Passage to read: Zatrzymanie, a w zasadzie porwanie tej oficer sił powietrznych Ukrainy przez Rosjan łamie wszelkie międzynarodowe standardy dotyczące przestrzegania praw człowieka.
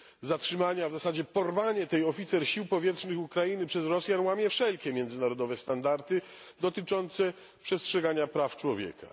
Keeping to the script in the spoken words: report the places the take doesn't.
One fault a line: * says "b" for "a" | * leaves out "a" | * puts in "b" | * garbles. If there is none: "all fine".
all fine